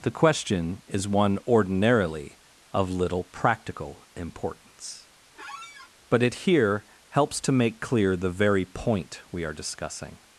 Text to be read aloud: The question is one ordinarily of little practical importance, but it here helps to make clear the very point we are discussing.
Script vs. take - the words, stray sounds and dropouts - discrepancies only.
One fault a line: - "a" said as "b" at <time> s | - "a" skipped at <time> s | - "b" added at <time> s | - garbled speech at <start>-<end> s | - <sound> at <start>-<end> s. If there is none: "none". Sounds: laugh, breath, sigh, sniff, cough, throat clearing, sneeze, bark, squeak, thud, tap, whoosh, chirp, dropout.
- squeak at 5.3-5.9 s